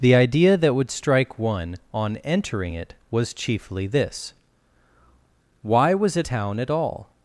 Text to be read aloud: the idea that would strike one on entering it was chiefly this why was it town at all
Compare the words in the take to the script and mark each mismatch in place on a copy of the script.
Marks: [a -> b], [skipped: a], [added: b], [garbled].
the idea that would strike one on entering it was chiefly this why was it town at all